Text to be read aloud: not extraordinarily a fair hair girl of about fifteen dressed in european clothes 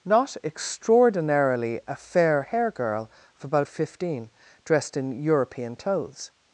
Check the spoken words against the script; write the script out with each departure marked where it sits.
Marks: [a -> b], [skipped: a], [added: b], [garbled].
not extraordinarily a fair hair girl of about fifteen dressed in european clothes